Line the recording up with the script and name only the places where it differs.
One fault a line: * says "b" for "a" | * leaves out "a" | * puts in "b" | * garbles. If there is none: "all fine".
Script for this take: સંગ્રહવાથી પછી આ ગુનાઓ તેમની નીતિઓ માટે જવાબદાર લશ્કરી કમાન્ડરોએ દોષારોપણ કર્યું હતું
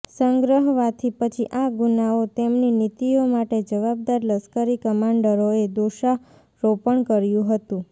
all fine